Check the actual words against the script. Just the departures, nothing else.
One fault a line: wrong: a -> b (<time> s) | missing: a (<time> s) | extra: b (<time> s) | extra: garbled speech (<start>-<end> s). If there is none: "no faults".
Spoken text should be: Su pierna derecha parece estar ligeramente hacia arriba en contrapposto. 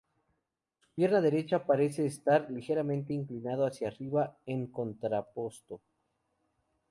extra: inclinado (3.1 s)